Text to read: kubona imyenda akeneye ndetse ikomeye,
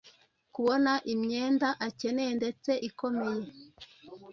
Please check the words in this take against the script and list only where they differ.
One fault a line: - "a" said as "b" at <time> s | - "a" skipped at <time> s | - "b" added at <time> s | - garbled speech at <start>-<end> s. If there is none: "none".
none